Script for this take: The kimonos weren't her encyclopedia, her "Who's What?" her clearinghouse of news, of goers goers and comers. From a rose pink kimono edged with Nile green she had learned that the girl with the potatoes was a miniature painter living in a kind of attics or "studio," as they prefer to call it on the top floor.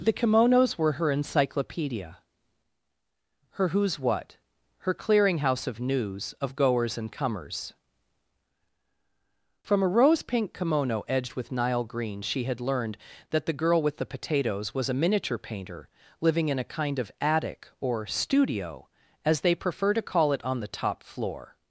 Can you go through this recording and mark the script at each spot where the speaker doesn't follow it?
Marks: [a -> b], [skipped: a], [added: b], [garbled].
The kimonos [weren't -> were] her encyclopedia, her "Who's What?" her clearinghouse of news, of goers [skipped: goers] and comers. From a rose pink kimono edged with Nile green she had learned that the girl with the potatoes was a miniature painter living in a kind of [attics -> attic] or "studio," as they prefer to call it on the top floor.